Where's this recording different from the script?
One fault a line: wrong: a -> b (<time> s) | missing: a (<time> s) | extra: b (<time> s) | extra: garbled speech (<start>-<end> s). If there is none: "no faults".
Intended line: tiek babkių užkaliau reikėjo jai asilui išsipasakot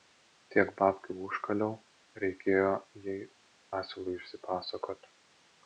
no faults